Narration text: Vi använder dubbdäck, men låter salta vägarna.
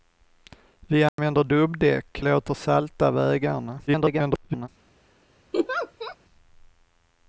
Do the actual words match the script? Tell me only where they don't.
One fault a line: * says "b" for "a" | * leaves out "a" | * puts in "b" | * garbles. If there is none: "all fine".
* leaves out "men"
* garbles